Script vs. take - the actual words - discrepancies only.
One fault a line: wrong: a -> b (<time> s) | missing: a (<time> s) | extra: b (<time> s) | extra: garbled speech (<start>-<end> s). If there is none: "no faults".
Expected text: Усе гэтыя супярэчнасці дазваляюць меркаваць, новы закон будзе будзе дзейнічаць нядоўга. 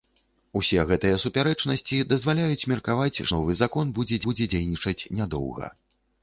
no faults